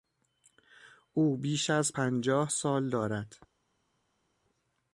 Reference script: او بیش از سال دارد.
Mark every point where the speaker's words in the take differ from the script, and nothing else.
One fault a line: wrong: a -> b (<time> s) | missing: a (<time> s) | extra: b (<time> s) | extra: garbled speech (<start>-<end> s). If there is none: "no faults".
extra: پنجاه (1.9 s)